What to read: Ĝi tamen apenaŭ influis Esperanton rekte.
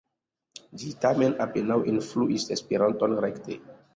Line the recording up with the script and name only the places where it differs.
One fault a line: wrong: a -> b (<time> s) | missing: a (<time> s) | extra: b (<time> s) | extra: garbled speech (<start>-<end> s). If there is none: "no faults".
no faults